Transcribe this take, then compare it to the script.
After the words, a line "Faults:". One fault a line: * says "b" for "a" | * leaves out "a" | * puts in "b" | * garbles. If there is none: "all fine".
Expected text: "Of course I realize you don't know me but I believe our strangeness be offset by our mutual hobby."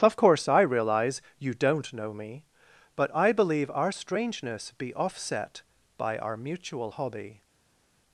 "Of course I realize you don't know me but I believe our strangeness be offset by our mutual hobby."
Faults:
all fine